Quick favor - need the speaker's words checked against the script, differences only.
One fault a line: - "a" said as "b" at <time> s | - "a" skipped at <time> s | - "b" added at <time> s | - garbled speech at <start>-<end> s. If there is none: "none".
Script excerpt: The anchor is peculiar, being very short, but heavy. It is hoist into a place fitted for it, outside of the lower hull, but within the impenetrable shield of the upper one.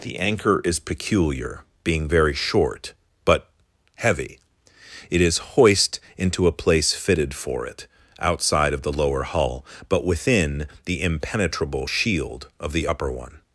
none